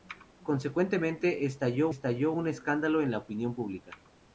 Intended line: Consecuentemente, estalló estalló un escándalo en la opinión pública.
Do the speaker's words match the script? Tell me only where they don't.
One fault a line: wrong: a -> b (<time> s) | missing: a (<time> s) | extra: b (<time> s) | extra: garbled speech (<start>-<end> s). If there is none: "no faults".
no faults